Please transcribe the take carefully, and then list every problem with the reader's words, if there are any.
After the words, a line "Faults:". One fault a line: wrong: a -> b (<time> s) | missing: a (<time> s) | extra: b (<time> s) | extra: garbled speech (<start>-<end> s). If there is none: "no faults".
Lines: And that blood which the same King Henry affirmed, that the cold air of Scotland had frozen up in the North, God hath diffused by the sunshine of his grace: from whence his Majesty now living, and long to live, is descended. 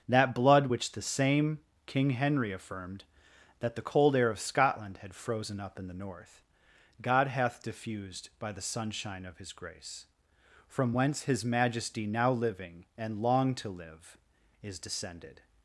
that blood which the same King Henry affirmed, that the cold air of Scotland had frozen up in the North, God hath diffused by the sunshine of his grace: from whence his Majesty now living, and long to live, is descended.
Faults:
missing: And (0.1 s)